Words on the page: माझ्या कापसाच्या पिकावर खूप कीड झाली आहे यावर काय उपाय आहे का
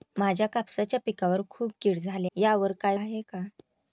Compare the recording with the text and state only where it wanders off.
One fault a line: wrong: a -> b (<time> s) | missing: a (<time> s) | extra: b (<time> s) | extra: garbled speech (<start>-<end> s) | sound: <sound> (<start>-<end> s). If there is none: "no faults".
missing: आहे (2.3 s)
missing: उपाय (3.0 s)